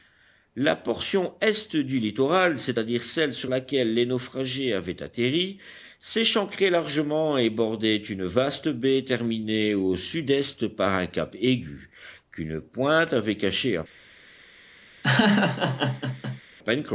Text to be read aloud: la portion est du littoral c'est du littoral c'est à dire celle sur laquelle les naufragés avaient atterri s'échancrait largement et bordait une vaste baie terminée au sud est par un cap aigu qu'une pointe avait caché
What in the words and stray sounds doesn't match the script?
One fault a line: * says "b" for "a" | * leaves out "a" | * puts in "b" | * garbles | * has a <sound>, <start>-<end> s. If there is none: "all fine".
* leaves out "du littoral c'est"
* has a laugh, 15.0-16.4 s